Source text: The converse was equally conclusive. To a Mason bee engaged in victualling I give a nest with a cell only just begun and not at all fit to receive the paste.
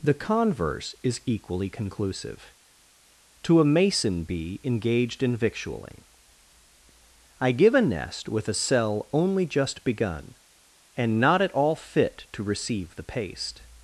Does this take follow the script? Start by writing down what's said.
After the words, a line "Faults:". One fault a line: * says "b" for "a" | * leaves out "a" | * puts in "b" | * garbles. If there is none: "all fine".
The converse is equally conclusive. To a Mason bee engaged in victualling I give a nest with a cell only just begun and not at all fit to receive the paste.
Faults:
* says "is" for "was"